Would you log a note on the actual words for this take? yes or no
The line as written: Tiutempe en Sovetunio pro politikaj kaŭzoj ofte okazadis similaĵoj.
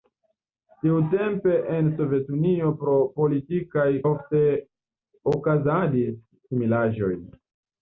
yes